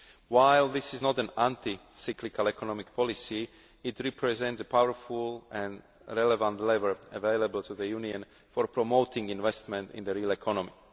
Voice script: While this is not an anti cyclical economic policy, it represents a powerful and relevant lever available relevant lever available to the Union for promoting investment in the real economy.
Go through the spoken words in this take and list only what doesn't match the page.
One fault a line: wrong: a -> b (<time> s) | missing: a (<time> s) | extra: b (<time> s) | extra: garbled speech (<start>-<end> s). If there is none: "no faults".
missing: relevant lever available (7.6 s)